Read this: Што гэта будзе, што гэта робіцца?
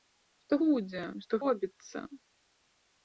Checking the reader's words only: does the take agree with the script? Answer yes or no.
no